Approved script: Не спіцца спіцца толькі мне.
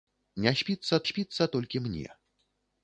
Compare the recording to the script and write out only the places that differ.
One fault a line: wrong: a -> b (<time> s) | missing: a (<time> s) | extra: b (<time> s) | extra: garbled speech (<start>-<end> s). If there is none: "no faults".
no faults